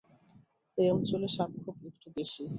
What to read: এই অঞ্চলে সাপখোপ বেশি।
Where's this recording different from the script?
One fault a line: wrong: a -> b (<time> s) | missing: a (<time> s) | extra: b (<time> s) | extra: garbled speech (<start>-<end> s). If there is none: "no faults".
extra: একটু (1.9 s)